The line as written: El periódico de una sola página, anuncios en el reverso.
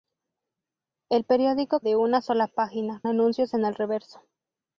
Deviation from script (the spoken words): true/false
false